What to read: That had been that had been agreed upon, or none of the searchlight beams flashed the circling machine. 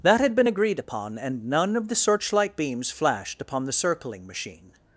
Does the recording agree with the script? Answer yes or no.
no